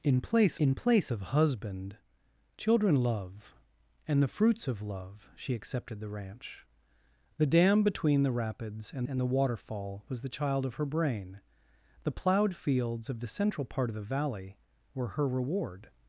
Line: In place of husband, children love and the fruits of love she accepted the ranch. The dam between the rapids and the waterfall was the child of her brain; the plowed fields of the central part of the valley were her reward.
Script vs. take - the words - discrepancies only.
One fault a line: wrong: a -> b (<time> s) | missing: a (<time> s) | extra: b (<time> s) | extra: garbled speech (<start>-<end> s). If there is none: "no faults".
extra: in place (0.6 s)
extra: and (9.1 s)